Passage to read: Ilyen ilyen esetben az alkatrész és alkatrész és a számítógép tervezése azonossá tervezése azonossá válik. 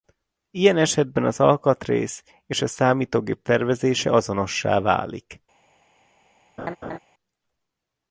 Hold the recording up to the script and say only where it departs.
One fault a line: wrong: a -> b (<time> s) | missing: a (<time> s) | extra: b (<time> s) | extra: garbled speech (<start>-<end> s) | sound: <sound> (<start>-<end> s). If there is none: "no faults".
missing: ilyen (0.8 s)
missing: alkatrész és (2.6 s)
missing: tervezése azonossá (4.8 s)
sound: laugh (6.6-7.0 s)